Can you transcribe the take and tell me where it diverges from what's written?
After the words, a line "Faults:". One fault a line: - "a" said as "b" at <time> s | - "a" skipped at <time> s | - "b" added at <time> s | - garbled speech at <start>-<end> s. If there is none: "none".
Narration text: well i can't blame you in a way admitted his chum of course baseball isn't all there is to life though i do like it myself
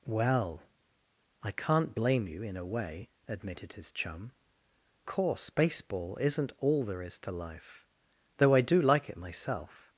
well i can't blame you in a way admitted his chum course baseball isn't all there is to life though i do like it myself
Faults:
- "of" skipped at 4.3 s